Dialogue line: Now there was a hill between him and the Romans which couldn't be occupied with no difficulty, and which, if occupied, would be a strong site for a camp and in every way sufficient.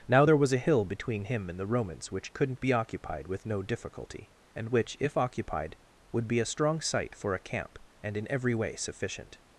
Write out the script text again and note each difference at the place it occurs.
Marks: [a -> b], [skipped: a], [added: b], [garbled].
Now there was a hill between him and the Romans which couldn't be occupied with no difficulty, and which, if occupied, would be a strong site for a camp and in every way sufficient.